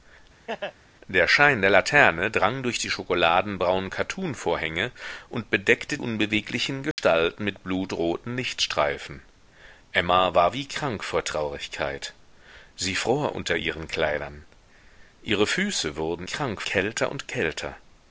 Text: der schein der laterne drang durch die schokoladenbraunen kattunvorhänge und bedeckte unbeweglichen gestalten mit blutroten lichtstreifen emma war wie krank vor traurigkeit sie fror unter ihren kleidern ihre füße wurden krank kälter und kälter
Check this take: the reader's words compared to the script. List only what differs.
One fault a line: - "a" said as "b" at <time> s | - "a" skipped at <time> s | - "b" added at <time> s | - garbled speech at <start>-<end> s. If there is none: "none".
none